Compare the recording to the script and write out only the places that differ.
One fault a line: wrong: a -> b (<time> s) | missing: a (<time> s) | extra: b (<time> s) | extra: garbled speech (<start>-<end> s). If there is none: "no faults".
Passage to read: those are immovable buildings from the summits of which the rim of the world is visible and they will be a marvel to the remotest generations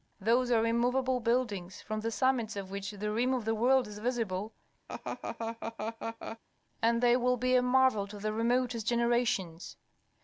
no faults